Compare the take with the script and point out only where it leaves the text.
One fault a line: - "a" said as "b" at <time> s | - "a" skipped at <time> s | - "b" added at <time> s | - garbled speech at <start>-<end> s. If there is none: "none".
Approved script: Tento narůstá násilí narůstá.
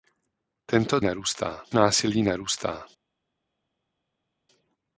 none